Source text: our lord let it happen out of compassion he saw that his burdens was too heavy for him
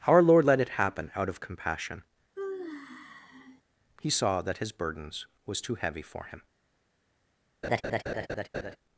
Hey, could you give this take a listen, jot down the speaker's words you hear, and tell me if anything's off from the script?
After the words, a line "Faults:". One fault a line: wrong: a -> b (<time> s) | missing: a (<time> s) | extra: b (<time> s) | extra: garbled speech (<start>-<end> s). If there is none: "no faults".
our lord let it happen out of compassion he saw that his burdens was too heavy for him
Faults:
no faults